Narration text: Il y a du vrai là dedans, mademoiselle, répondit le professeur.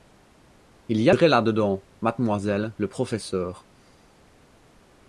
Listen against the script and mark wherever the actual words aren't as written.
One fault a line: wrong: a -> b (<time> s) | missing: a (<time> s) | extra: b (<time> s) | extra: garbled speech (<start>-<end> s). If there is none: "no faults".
missing: du (1.1 s)
missing: répondit (2.8 s)